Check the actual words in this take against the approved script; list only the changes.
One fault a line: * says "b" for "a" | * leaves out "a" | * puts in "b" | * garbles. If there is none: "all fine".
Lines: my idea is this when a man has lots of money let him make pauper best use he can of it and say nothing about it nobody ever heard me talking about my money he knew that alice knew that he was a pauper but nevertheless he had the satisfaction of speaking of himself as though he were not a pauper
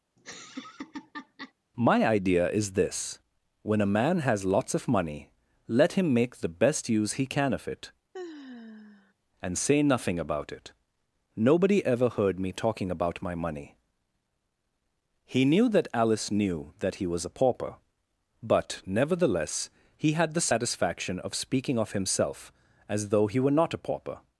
* says "the" for "pauper"